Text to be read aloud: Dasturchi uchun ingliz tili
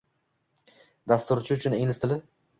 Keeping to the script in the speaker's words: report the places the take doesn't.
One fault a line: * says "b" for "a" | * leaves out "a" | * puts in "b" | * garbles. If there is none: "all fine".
all fine